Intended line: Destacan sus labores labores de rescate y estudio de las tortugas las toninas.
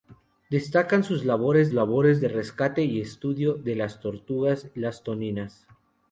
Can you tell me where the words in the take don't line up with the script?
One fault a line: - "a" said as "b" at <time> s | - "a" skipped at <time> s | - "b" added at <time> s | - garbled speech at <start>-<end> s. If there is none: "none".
none